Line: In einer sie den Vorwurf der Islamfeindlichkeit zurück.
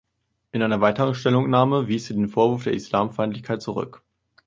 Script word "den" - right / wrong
right